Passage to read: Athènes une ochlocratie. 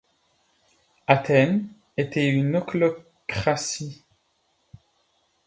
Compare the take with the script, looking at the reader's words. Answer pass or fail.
fail